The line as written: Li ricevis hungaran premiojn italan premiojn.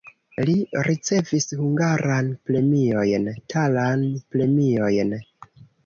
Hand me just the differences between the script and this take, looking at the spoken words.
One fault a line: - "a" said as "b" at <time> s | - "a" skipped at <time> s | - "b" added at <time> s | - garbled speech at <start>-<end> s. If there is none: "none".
none